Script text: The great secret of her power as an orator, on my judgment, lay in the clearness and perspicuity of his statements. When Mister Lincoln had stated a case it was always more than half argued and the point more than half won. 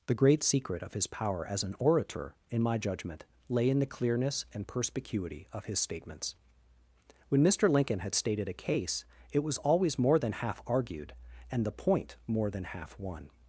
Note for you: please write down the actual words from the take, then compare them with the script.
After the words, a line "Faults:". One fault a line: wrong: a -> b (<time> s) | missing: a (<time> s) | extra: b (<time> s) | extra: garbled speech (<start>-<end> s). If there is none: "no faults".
The great secret of his power as an orator, in my judgment, lay in the clearness and perspicuity of his statements. When Mister Lincoln had stated a case it was always more than half argued and the point more than half won.
Faults:
wrong: her -> his (0.9 s)
wrong: on -> in (2.5 s)